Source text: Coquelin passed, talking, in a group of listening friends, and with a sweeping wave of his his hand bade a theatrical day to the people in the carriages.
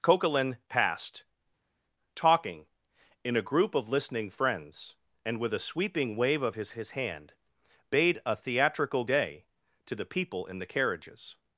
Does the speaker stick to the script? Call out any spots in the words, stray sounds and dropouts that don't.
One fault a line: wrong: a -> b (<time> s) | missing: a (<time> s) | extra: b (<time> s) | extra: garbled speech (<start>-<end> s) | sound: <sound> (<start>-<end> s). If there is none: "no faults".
no faults